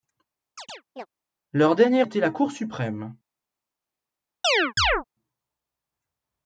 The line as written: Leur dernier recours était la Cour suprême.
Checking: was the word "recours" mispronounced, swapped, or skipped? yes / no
yes